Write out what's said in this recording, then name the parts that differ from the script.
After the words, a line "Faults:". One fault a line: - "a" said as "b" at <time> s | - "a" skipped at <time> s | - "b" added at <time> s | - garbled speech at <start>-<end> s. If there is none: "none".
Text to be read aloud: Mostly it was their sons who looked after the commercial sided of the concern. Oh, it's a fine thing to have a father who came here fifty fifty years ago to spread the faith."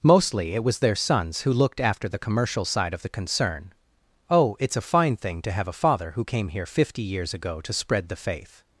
Mostly it was their sons who looked after the commercial side of the concern. Oh, it's a fine thing to have a father who came here fifty years ago to spread the faith."
Faults:
- "sided" said as "side" at 2.6 s
- "fifty" skipped at 7.0 s